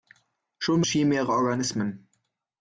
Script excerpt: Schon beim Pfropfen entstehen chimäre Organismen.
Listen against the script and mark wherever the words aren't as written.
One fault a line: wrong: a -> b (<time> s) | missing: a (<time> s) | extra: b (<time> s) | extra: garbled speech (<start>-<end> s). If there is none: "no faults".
missing: beim Pfropfen entstehen (0.8 s)